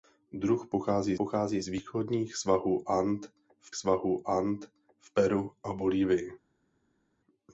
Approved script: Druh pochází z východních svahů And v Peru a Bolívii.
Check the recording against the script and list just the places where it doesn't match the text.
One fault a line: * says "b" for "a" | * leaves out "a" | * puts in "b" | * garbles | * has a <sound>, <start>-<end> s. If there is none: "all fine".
* puts in "pochází"
* puts in "svahů And v"